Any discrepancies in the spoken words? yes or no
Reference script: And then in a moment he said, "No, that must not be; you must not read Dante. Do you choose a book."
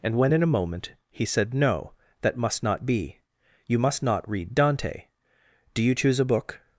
yes